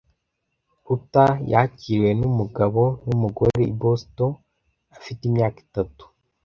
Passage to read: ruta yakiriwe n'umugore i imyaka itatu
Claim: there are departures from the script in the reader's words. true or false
true